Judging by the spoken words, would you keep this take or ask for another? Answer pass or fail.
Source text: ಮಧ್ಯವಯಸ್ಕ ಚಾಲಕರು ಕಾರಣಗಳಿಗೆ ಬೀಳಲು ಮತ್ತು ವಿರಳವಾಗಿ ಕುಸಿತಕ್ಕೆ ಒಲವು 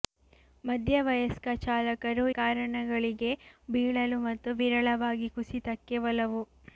pass